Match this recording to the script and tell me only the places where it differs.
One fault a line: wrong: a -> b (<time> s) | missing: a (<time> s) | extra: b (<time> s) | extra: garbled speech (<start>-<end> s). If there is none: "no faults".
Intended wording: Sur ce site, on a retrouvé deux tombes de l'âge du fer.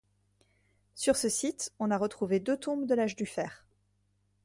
no faults